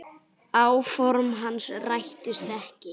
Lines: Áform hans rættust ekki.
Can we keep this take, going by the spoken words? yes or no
yes